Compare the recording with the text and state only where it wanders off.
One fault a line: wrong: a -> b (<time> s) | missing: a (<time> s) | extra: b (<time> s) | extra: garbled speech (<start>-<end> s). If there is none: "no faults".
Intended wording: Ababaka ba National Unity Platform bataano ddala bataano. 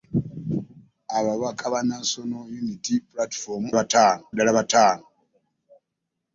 no faults